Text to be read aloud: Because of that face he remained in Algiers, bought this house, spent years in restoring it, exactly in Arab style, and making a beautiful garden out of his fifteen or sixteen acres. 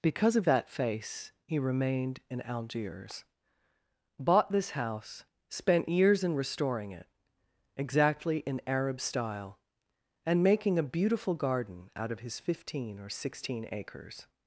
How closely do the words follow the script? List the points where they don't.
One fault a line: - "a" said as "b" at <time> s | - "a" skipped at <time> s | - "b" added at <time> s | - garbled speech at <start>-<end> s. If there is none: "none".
none